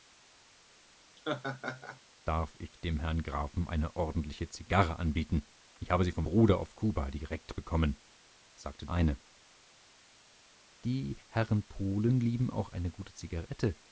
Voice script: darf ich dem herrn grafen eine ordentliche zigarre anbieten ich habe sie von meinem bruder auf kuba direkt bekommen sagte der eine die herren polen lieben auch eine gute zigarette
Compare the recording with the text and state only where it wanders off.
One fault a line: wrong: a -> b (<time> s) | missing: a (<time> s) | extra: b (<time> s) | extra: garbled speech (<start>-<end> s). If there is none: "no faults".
missing: meinem (6.2 s)
missing: der (8.9 s)